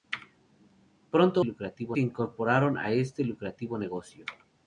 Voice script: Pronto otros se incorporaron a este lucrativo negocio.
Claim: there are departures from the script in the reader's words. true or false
true